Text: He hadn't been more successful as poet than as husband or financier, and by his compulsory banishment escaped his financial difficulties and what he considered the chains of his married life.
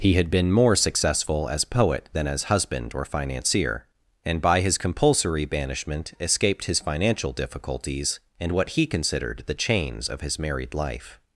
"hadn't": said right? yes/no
no